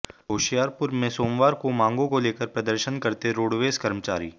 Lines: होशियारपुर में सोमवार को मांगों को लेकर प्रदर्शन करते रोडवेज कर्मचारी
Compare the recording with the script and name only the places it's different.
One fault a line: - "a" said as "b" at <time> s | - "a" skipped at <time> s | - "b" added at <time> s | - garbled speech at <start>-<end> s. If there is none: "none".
none